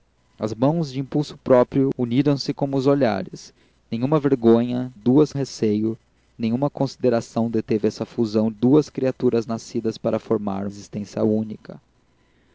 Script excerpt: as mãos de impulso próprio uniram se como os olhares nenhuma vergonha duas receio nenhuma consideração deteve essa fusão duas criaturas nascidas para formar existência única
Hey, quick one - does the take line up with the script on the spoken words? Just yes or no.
yes